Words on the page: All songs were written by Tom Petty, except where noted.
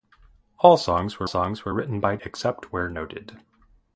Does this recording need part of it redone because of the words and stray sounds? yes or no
yes